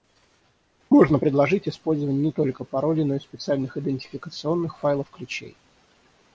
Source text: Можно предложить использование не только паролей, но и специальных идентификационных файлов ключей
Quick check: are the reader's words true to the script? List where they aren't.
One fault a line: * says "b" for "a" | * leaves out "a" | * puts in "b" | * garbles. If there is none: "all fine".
all fine